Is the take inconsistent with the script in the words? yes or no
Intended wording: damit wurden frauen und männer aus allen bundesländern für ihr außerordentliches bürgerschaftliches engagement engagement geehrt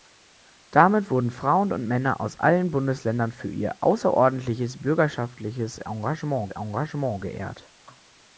no